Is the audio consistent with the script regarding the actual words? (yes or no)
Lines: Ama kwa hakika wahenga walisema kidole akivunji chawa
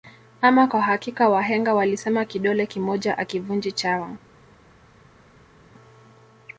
no